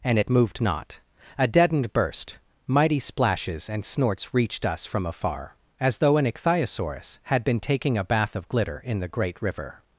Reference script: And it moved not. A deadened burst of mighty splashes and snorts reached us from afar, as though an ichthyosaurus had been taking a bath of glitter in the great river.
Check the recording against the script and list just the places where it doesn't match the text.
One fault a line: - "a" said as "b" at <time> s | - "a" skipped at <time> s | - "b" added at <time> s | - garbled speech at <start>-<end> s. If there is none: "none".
- "of" skipped at 2.4 s